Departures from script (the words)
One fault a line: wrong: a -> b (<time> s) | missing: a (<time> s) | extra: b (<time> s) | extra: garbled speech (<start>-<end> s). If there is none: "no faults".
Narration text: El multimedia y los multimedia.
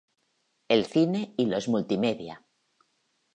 wrong: multimedia -> cine (0.8 s)